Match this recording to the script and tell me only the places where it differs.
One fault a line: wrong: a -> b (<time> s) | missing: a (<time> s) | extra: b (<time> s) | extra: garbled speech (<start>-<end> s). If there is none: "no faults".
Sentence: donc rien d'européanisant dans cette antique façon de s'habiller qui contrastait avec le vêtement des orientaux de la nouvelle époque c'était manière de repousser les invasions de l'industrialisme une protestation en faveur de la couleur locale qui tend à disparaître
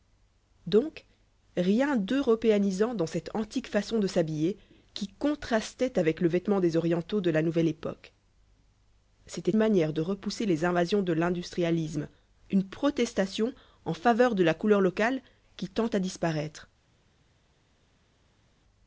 no faults